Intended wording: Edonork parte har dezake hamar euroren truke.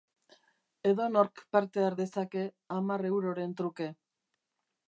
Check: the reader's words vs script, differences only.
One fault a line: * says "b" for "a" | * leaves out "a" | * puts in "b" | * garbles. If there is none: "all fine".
all fine